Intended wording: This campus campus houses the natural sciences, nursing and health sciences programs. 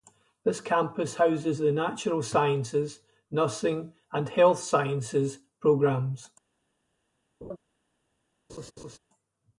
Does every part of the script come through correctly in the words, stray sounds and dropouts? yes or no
no